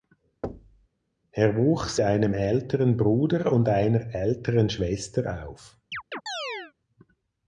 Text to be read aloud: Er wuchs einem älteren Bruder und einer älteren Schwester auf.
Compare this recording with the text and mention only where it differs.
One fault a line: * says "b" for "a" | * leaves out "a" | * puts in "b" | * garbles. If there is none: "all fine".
all fine